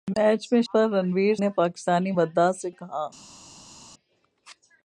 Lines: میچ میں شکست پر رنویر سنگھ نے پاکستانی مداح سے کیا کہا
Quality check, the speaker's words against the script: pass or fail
fail